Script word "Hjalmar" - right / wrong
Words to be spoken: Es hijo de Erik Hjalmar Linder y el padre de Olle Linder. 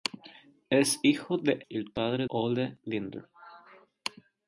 wrong